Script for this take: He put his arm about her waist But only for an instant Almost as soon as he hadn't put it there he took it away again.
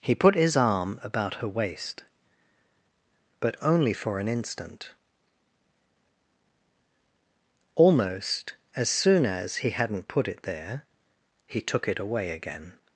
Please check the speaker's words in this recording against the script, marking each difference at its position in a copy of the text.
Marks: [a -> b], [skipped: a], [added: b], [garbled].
He put his arm about her waist But only for an instant Almost as soon as he hadn't put it there he took it away again.